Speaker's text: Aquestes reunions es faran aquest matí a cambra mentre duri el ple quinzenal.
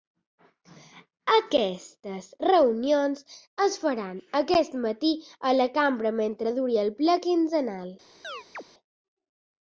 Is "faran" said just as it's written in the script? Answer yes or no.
yes